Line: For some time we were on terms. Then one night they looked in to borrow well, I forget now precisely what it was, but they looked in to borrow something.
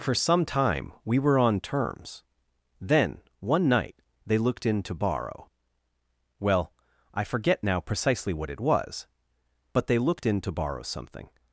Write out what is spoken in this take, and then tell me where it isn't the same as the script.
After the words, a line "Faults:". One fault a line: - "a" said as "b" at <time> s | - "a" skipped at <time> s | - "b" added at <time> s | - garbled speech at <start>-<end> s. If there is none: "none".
For some time we were on terms. Then one night they looked in to borrow well, I forget now precisely what it was, but they looked in to borrow something.
Faults:
none